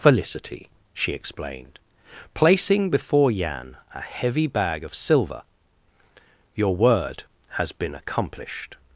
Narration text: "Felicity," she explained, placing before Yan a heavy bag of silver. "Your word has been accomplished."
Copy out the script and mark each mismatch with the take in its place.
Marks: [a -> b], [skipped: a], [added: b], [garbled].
"Felicity," she explained, placing before Yan a heavy bag of silver. "Your word has been accomplished."